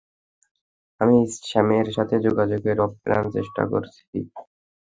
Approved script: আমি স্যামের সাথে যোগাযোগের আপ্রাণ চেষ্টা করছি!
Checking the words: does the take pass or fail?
pass